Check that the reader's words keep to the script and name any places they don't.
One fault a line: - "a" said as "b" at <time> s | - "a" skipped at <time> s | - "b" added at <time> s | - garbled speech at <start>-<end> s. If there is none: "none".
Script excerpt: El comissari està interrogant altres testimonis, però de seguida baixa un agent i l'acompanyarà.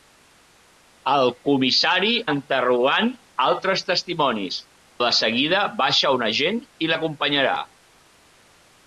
- "està" skipped at 2.1 s
- "però" skipped at 4.6 s